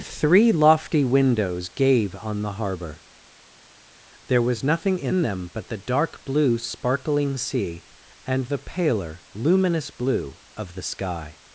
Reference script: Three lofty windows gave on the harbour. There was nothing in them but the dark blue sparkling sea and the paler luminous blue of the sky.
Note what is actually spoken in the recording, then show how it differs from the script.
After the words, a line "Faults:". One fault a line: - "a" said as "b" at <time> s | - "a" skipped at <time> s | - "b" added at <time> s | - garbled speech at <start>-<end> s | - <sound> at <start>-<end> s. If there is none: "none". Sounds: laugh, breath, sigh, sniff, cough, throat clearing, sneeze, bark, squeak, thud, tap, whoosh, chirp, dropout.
Three lofty windows gave on the harbour. There was nothing in them but the dark blue sparkling sea and the paler luminous blue of the sky.
Faults:
none